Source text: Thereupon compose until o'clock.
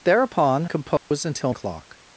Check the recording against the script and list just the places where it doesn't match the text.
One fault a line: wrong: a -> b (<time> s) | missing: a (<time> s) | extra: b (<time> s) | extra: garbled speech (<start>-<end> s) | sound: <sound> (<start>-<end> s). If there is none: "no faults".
sound: dropout (1.0-1.1 s)